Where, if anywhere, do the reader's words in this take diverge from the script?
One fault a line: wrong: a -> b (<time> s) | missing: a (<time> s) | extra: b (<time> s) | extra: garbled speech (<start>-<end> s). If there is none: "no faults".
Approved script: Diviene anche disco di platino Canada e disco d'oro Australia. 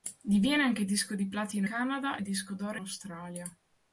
no faults